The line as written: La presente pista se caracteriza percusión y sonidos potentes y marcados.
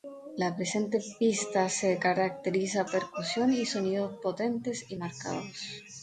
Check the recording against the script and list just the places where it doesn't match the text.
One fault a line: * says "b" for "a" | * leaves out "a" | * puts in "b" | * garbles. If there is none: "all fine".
all fine